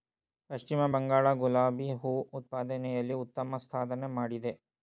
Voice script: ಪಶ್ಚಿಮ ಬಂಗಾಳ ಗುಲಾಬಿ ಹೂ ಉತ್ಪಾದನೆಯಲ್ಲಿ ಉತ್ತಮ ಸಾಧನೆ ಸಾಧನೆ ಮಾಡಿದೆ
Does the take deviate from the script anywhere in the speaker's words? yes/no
yes